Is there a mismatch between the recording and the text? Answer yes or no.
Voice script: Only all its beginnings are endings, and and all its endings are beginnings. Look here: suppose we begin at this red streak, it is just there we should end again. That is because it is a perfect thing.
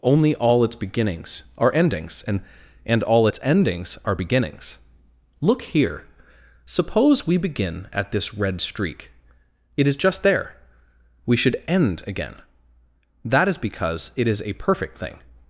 no